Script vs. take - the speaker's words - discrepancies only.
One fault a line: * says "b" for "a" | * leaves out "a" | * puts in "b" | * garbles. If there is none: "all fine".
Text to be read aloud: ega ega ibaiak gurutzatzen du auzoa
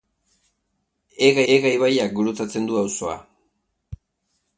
all fine